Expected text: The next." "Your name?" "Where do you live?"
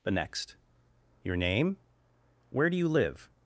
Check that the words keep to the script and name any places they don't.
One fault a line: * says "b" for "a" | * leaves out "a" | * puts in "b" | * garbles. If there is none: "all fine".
all fine